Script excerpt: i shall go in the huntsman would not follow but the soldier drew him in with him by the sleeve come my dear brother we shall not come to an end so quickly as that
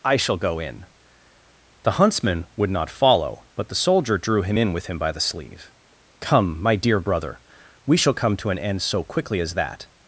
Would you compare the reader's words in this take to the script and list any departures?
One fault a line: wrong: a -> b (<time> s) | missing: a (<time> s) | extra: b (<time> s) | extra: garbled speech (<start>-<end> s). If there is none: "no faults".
missing: not (8.1 s)